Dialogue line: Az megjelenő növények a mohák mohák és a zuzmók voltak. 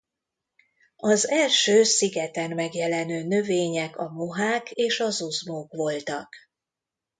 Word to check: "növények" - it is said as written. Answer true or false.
true